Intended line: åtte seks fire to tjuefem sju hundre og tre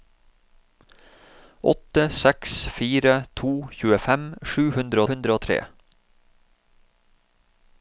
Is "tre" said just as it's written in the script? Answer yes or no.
yes